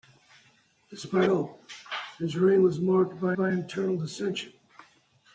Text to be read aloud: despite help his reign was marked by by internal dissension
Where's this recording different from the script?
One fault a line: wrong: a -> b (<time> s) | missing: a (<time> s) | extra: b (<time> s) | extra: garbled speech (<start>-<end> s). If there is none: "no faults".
no faults